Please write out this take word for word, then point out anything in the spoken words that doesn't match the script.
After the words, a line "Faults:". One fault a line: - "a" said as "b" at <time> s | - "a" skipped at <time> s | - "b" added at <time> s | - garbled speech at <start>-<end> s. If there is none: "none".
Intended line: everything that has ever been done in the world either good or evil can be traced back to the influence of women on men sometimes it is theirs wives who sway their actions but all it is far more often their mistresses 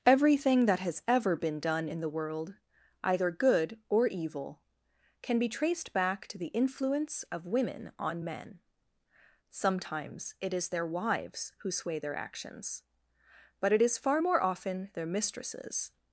everything that has ever been done in the world either good or evil can be traced back to the influence of women on men sometimes it is their wives who sway their actions but it is far more often their mistresses
Faults:
- "theirs" said as "their" at 10.7 s
- "all" skipped at 13.7 s